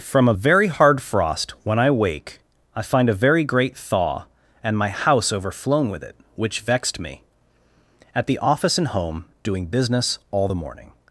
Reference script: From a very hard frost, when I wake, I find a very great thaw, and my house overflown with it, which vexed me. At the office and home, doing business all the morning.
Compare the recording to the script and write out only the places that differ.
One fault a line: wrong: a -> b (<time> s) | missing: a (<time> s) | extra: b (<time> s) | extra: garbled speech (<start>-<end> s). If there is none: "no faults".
no faults